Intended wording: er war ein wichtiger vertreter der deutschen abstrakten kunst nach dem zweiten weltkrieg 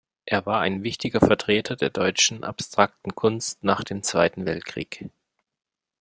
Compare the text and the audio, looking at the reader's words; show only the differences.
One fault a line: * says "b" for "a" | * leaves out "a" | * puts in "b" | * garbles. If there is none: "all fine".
all fine